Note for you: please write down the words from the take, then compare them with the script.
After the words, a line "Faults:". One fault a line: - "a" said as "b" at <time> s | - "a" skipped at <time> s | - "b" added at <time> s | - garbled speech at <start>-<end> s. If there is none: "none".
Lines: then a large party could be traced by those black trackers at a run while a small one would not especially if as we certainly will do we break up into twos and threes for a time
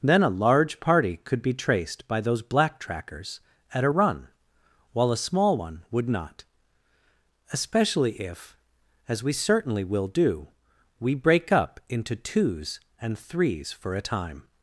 then a large party could be traced by those black trackers at a run while a small one would not especially if as we certainly will do we break up into twos and threes for a time
Faults:
none